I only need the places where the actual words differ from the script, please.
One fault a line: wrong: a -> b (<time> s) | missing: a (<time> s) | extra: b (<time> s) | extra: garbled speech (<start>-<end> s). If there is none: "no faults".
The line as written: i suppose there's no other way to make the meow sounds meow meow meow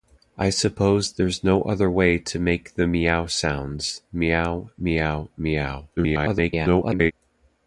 extra: garbled speech (6.0-7.1 s)